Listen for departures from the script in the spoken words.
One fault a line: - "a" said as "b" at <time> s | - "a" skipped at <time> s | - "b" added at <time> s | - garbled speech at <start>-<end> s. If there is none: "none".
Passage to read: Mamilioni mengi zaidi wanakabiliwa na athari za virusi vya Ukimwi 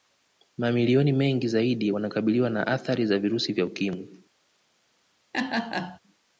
none